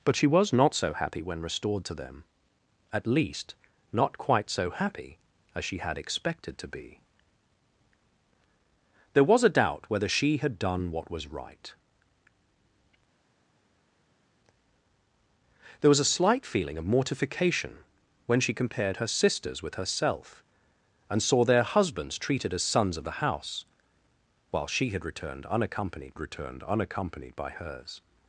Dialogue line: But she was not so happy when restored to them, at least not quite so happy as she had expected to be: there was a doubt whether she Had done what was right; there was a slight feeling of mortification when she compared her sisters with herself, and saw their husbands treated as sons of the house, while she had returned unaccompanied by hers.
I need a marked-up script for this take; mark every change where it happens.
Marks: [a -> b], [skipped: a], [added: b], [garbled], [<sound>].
But she was not so happy when restored to them, at least not quite so happy as she had expected to be: there was a doubt whether she Had done what was right; there was a slight feeling of mortification when she compared her sisters with herself, and saw their husbands treated as sons of the house, while she had returned unaccompanied [added: returned unaccompanied] by hers.